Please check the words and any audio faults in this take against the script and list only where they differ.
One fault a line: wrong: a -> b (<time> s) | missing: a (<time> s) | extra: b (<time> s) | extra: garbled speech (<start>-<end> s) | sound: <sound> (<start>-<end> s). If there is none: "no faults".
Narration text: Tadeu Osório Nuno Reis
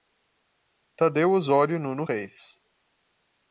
no faults